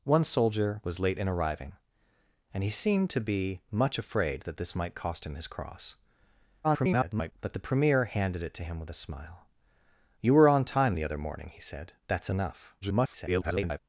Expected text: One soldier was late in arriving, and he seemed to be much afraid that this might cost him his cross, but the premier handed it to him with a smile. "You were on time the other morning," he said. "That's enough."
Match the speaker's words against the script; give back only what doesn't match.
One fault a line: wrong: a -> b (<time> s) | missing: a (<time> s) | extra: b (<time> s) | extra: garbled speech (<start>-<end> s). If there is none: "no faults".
extra: garbled speech (6.6-7.3 s)
extra: garbled speech (12.8-13.8 s)